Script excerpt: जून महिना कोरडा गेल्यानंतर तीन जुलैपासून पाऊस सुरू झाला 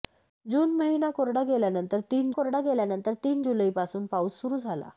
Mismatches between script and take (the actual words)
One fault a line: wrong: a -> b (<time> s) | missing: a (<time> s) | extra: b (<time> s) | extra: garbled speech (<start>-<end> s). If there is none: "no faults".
extra: कोरडा गेल्यानंतर तीन (2.3 s)